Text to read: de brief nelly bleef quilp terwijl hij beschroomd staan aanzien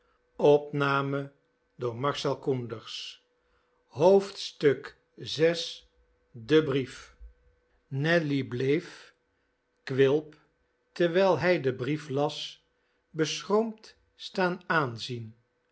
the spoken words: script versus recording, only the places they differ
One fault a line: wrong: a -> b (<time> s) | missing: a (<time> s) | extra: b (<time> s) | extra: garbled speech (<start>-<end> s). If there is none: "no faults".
extra: den brief las (11.6 s)